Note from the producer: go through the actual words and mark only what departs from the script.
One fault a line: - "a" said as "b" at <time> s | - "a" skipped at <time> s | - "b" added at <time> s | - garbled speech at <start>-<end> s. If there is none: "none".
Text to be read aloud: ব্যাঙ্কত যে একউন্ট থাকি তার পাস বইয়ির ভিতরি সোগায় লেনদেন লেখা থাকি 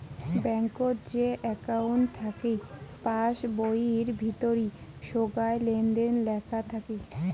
- "তার" skipped at 2.5 s